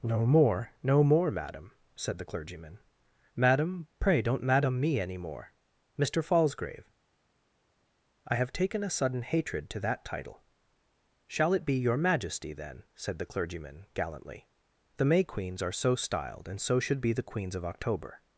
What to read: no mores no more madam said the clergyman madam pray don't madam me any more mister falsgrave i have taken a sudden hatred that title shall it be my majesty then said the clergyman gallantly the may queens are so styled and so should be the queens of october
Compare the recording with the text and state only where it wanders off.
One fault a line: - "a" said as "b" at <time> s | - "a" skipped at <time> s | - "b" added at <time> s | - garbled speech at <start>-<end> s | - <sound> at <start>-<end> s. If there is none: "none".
- "mores" said as "more" at 0.2 s
- "to" added at 9.7 s
- "my" said as "your" at 11.7 s